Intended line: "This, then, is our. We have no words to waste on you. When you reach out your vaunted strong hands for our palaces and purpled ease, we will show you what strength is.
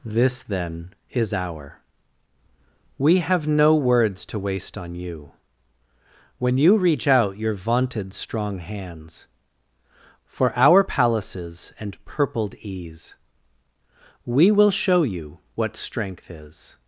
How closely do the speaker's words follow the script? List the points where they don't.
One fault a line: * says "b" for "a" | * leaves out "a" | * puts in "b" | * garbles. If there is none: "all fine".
all fine